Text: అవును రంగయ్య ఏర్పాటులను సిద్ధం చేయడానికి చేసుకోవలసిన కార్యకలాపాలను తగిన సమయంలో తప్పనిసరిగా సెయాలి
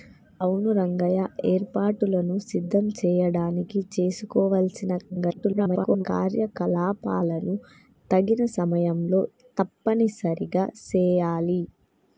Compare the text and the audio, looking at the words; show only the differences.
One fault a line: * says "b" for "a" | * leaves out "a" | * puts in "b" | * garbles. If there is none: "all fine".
* garbles